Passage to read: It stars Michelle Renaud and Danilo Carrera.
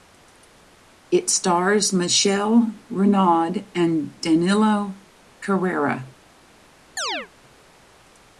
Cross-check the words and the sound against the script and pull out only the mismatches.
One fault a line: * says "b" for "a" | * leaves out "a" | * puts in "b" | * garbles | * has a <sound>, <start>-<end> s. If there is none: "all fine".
* has a chirp, 7.0-7.3 s